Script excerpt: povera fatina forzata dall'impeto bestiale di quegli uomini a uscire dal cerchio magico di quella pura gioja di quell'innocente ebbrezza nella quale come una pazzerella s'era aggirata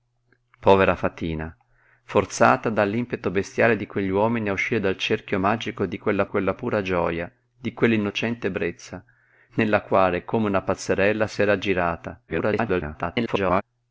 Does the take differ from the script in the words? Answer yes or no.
yes